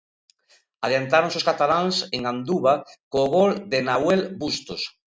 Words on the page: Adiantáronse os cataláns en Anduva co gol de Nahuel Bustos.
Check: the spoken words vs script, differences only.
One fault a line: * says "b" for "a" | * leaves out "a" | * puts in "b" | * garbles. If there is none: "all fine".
all fine